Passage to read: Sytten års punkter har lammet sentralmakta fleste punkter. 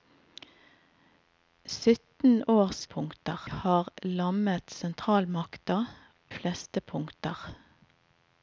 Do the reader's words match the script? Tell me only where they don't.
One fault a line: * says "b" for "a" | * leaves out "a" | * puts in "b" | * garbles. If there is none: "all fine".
all fine